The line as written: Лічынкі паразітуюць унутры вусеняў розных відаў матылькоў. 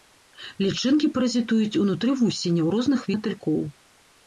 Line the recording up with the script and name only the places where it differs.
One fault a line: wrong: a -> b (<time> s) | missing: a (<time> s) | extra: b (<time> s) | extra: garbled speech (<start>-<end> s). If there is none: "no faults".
missing: відаў (3.1 s)